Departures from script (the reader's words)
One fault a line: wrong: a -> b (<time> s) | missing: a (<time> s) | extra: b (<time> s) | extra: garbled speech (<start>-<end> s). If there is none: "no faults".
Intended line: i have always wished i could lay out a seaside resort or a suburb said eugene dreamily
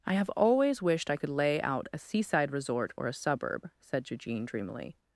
no faults